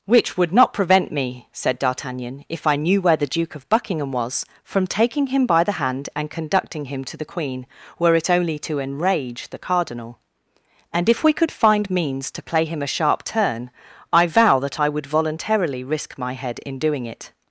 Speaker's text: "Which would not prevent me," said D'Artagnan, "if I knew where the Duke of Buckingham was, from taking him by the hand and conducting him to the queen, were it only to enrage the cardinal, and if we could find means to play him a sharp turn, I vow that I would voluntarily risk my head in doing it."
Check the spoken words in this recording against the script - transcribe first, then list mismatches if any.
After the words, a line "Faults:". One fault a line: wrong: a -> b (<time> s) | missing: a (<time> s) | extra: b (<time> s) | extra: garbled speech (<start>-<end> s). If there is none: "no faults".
"Which would not prevent me," said D'Artagnan, "if I knew where the Duke of Buckingham was, from taking him by the hand and conducting him to the queen, were it only to enrage the cardinal, and if we could find means to play him a sharp turn, I vow that I would voluntarily risk my head in doing it."
Faults:
no faults